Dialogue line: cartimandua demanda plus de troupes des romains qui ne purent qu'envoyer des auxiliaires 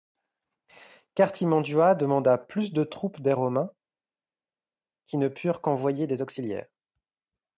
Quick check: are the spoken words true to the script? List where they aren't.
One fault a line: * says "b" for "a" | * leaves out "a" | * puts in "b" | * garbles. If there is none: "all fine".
all fine